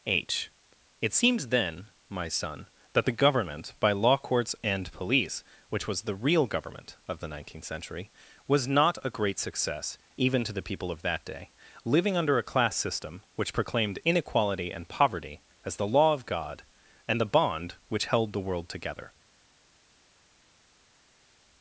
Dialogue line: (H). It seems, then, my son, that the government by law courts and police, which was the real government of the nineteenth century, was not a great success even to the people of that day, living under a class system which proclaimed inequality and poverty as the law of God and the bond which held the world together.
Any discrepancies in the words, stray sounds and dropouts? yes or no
no